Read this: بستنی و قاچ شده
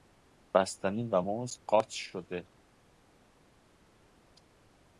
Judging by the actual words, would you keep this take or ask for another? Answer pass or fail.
fail